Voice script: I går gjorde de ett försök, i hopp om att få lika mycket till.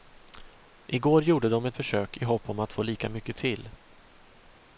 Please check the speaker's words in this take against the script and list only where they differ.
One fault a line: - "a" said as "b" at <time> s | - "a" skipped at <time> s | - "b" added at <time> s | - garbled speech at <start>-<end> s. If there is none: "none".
none